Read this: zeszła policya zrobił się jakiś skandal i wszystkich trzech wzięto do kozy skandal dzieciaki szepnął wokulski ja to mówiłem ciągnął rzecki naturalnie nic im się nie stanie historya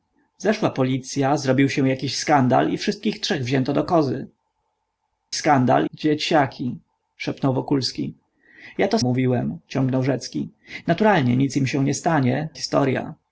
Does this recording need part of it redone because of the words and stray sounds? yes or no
no